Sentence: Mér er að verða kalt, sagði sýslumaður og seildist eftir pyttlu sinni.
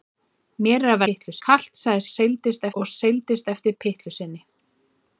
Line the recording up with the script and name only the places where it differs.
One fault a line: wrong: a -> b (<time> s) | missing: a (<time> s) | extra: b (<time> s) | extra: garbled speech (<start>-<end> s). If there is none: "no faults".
wrong: verða -> pyttlu (1.1 s)
wrong: sýslumaður -> seildist (2.1 s)